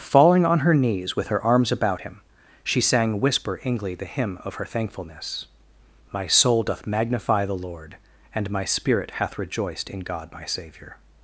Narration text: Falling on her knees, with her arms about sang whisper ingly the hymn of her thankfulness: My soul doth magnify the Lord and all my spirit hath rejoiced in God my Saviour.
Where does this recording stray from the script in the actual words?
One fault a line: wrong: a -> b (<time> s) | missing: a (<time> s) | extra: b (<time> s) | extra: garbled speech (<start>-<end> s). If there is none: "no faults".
extra: him she (2.0 s)
missing: all (8.5 s)